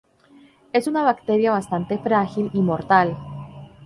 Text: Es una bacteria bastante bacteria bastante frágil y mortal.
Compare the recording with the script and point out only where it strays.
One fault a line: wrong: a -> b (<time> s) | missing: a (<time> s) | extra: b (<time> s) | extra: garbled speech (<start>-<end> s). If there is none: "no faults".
missing: bacteria bastante (2.0 s)